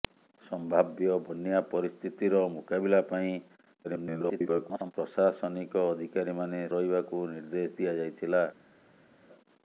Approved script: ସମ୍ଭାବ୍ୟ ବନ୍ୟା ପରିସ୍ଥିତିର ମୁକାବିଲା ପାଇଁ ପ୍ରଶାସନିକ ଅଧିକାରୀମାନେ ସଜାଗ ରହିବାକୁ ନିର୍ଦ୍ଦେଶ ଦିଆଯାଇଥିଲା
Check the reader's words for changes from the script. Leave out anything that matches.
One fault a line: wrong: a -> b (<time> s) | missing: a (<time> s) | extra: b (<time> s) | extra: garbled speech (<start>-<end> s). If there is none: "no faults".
extra: garbled speech (3.8-4.9 s)
missing: ସଜାଗ (6.6 s)